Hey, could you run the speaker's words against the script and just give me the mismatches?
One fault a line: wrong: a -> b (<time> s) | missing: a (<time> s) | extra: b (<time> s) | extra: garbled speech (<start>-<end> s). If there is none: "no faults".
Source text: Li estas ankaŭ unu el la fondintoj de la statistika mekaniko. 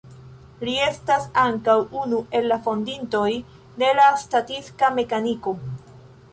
no faults